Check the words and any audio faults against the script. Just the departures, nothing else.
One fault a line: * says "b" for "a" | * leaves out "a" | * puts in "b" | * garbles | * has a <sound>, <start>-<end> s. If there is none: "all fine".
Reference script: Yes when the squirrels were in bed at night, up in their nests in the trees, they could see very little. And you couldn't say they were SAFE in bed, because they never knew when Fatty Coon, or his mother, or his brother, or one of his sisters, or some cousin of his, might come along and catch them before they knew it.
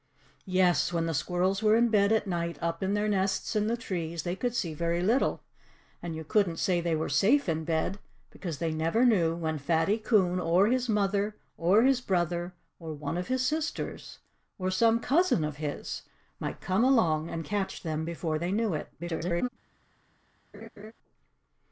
* garbles
* has a laugh, 20.5-20.9 s